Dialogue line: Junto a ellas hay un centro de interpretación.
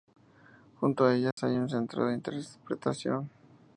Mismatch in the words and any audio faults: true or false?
true